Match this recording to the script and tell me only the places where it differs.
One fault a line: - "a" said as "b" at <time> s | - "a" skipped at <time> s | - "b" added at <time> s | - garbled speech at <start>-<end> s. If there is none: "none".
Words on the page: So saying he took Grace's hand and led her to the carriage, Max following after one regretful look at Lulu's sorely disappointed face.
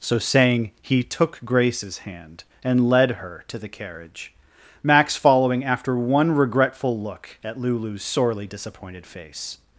none